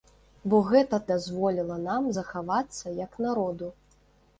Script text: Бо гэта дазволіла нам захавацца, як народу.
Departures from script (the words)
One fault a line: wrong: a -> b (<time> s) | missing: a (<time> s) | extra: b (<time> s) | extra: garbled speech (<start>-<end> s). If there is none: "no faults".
no faults